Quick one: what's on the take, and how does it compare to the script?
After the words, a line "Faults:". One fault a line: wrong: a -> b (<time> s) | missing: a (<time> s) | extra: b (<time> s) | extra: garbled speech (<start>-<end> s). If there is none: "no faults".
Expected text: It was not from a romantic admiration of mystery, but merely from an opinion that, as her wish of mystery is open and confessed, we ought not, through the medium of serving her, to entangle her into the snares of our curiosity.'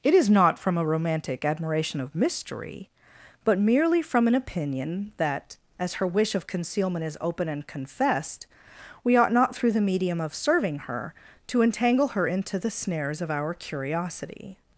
It is not from a romantic admiration of mystery, but merely from an opinion that, as her wish of concealment is open and confessed, we ought not, through the medium of serving her, to entangle her into the snares of our curiosity.'
Faults:
wrong: was -> is (0.1 s)
wrong: mystery -> concealment (6.5 s)